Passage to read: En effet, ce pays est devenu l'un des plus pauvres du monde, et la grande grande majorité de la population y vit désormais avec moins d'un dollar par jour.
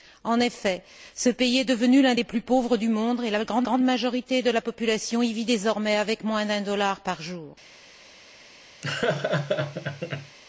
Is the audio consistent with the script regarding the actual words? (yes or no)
yes